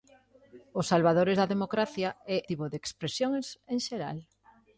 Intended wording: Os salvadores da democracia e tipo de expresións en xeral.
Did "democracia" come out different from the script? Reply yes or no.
no